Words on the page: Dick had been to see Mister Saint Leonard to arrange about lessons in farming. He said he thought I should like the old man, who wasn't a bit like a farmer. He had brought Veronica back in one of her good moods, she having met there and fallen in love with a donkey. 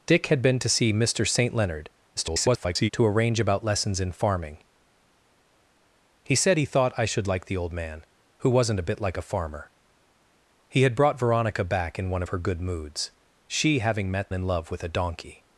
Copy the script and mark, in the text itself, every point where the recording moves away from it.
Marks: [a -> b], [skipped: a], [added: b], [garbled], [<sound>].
Dick had been to see Mister Saint Leonard [garbled] to arrange about lessons in farming. He said he thought I should like the old man, who wasn't a bit like a farmer. He had brought Veronica back in one of her good moods, she having met [skipped: there and fallen] in love with a donkey.